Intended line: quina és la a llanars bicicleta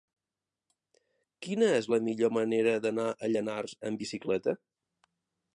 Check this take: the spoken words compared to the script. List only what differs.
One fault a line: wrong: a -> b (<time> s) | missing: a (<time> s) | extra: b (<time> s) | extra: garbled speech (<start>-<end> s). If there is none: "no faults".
extra: millor manera d'anar (2.1 s)
extra: amb (3.9 s)